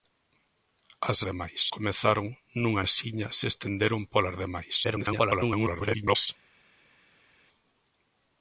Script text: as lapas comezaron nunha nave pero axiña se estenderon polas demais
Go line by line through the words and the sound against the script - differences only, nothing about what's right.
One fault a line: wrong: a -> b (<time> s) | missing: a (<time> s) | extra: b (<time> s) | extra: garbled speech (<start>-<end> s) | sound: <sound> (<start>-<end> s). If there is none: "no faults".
wrong: lapas -> demais (1.3 s)
missing: nave pero (2.8 s)
extra: garbled speech (4.8-6.3 s)